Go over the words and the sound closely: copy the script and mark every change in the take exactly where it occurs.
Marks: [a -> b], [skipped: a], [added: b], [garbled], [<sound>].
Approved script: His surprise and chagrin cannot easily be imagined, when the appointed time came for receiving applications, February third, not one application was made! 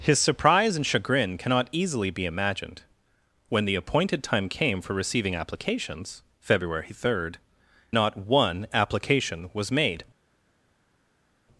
His surprise and chagrin cannot easily be imagined, when the appointed time came for receiving applications, February third, not one application was made!